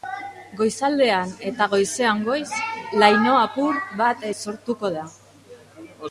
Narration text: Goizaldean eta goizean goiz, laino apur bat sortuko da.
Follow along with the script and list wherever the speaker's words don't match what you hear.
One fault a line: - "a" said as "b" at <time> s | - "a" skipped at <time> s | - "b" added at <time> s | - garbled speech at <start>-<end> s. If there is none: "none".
none